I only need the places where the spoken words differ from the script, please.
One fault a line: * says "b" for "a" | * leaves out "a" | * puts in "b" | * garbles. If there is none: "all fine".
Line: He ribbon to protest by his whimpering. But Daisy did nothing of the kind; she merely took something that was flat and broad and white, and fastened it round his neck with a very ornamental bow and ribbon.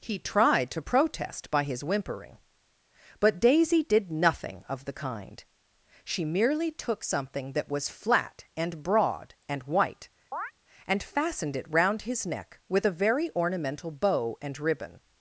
* says "tried" for "ribbon"